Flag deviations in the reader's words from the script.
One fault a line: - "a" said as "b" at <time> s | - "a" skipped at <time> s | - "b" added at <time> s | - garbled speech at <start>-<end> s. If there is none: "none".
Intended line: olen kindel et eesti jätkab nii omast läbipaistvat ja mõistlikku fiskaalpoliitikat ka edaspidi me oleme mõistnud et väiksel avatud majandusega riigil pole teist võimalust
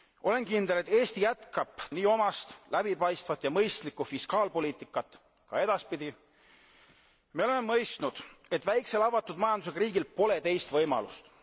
none